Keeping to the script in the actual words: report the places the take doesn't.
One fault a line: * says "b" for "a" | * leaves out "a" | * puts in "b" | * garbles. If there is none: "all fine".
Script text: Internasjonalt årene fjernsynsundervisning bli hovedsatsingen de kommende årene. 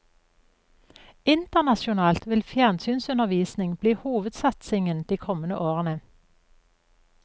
* says "vil" for "årene"